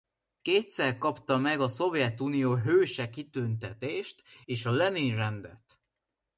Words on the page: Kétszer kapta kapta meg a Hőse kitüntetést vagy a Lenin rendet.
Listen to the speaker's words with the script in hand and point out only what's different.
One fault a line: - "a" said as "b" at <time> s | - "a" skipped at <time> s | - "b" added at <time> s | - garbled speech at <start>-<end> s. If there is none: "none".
- "kapta" skipped at 1.4 s
- "Szovjetunió" added at 1.7 s
- "vagy" said as "és" at 4.4 s